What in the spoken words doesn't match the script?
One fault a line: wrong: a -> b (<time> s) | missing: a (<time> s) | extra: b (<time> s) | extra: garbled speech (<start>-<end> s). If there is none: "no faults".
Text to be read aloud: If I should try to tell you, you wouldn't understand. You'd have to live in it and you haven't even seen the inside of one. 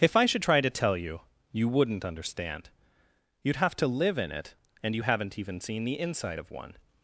no faults